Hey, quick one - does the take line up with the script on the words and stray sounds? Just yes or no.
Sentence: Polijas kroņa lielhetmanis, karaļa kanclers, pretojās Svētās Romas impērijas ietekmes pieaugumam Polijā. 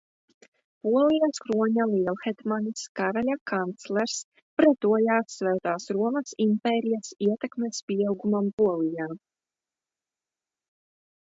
yes